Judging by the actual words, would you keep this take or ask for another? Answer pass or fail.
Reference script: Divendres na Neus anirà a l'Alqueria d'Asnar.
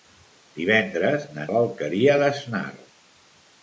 fail